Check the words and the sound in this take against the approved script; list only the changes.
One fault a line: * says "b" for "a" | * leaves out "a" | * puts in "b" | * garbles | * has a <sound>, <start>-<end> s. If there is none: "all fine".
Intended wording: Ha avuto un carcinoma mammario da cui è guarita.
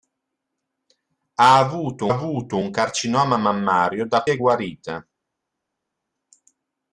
* puts in "avuto"
* leaves out "cui"